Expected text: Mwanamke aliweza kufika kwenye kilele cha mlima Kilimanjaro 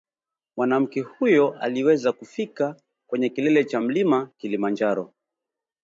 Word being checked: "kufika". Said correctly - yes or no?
yes